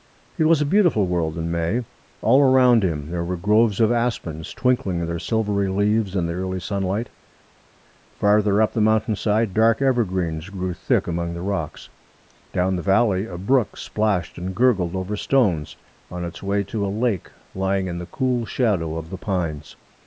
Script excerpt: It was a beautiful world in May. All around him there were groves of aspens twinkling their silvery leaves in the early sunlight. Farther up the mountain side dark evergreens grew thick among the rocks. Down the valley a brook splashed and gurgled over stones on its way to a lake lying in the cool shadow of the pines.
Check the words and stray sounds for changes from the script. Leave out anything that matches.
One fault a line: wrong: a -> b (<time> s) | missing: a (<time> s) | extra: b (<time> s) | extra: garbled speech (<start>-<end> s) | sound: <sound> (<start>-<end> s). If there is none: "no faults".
no faults